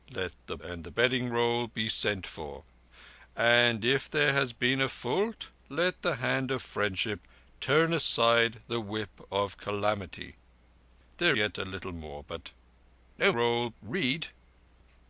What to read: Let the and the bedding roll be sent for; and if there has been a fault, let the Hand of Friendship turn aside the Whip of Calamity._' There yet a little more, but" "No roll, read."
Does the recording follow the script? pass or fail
pass